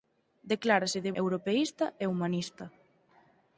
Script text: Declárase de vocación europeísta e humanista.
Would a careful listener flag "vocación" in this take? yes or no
yes